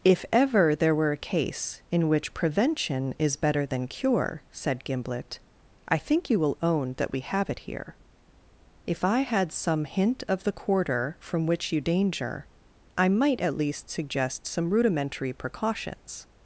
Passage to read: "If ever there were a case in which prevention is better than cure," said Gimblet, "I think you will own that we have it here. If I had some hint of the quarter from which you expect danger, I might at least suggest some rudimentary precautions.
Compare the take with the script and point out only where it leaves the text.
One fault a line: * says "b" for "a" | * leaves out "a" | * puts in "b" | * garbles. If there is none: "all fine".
* leaves out "expect"